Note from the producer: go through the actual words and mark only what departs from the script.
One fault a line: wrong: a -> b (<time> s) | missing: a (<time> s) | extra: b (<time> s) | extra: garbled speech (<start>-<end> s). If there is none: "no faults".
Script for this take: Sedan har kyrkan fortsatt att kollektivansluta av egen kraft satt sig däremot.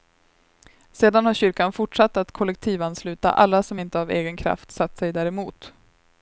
extra: alla som inte (3.3 s)